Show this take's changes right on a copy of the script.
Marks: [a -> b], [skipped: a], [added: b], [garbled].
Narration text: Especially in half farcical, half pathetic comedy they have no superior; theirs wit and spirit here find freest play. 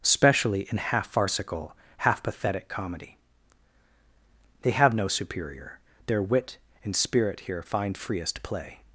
Especially in half farcical, half pathetic comedy they have no superior; [theirs -> their] wit and spirit here find freest play.